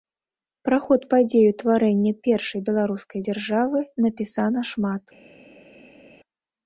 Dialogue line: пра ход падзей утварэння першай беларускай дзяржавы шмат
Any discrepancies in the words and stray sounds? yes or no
yes